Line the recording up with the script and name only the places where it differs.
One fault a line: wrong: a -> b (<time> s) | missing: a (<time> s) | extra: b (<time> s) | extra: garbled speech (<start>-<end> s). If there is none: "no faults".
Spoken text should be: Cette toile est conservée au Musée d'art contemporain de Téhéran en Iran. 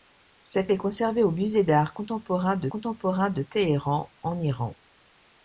missing: toile (0.7 s)
extra: contemporain de (2.7 s)